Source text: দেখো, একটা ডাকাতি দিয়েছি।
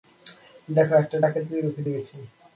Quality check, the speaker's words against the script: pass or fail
fail